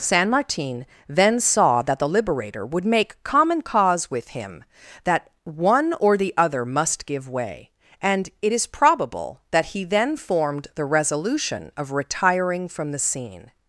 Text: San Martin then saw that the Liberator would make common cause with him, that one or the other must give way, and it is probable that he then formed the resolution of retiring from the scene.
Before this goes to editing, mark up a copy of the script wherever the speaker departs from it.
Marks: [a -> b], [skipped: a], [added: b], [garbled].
San Martin then saw that the Liberator would make common cause with him, that one or the other must give way, and it is probable that he then formed the resolution of retiring from the scene.